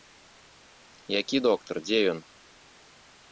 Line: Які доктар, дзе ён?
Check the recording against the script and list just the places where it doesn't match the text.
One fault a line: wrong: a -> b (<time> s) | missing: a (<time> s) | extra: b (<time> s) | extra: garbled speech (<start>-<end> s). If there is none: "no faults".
no faults